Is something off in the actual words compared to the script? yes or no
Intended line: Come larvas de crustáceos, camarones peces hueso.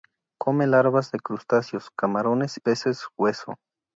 no